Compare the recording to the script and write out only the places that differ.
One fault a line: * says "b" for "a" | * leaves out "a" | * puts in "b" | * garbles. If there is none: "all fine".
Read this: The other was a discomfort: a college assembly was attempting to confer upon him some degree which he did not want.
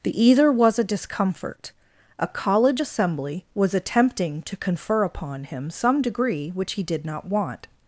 * says "either" for "other"